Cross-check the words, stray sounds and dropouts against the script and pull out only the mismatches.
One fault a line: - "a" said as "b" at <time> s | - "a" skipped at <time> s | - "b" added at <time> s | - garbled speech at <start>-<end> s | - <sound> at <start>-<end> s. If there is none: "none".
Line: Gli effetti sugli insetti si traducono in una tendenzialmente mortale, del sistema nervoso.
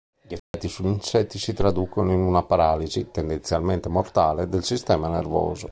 - dropout at 0.4-0.5 s
- "paralisi" added at 2.4 s